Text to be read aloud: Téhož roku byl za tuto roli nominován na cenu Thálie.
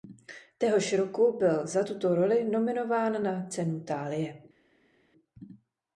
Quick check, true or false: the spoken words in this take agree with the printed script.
true